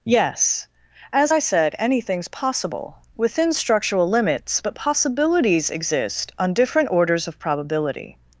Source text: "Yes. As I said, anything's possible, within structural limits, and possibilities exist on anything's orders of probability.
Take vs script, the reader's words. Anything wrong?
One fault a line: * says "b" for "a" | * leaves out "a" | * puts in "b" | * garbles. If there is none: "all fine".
* says "but" for "and"
* says "different" for "anything's"